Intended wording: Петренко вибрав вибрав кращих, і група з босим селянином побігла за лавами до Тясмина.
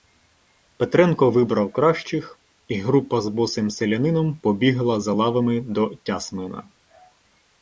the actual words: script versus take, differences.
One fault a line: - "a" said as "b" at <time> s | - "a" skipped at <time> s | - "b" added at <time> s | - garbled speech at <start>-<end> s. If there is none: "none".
- "вибрав" skipped at 1.7 s